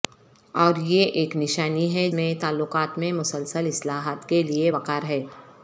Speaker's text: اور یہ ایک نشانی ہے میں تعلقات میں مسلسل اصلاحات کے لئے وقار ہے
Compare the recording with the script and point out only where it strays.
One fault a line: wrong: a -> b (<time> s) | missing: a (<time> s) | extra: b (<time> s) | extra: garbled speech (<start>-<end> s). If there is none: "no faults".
no faults